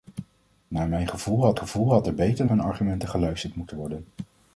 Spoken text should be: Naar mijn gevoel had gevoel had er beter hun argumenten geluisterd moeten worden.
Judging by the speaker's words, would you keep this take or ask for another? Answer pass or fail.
pass